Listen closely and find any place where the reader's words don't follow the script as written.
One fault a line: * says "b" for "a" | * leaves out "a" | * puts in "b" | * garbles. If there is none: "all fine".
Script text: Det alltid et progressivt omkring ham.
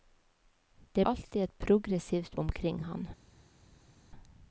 all fine